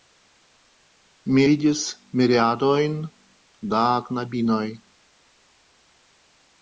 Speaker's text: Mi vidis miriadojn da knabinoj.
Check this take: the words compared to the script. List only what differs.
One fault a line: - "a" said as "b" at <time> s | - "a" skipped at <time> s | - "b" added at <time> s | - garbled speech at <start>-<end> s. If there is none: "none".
none